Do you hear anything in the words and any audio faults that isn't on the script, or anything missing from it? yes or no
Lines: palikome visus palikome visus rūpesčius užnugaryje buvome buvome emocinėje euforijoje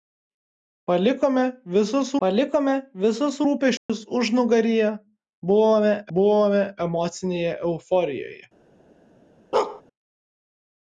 yes